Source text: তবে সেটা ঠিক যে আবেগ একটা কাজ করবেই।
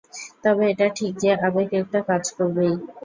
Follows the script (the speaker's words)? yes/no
no